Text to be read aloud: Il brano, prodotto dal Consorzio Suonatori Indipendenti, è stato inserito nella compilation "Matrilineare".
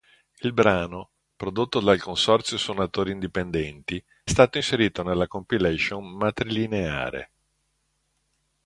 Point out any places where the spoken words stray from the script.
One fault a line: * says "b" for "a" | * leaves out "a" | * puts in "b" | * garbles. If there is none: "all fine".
* leaves out "è"